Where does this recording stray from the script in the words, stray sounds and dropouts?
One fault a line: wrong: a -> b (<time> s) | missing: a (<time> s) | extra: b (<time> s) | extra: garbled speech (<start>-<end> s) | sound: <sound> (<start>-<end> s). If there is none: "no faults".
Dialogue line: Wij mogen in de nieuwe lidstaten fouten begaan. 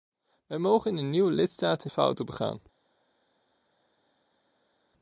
no faults